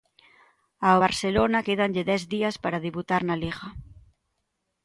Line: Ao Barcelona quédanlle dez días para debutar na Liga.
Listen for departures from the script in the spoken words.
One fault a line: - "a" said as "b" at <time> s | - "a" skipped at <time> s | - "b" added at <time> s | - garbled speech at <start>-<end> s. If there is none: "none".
none